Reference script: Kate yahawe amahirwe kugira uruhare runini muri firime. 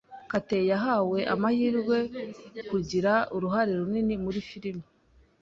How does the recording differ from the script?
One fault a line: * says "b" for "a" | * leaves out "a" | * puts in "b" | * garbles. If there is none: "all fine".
all fine